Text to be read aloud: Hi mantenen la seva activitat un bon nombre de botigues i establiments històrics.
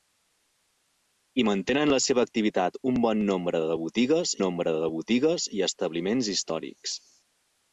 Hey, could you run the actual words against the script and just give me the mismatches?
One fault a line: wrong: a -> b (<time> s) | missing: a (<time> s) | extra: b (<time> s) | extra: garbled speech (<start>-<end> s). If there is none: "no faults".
extra: nombre de botigues (4.4 s)